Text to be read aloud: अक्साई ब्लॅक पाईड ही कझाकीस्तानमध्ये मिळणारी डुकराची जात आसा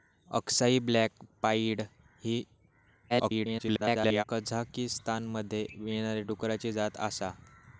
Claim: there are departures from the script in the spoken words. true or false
true